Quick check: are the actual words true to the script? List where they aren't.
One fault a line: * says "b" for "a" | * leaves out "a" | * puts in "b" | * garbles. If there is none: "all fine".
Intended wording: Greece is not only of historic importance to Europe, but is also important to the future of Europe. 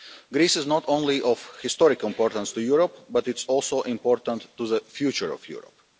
* puts in "it"